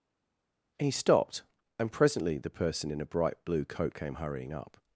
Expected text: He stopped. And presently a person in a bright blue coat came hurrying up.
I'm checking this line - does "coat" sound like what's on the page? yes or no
yes